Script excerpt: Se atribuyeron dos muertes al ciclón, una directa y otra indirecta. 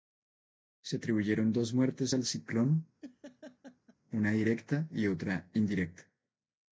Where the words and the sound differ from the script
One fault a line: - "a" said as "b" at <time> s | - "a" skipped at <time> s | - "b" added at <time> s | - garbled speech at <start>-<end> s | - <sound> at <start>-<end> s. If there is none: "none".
- laugh at 3.0-4.0 s